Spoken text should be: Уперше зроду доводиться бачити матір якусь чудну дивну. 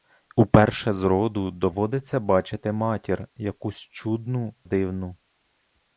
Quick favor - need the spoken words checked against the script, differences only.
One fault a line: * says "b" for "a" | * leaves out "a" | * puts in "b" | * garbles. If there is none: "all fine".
all fine